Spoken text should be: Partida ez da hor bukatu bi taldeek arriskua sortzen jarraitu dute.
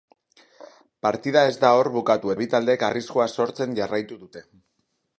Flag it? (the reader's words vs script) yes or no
no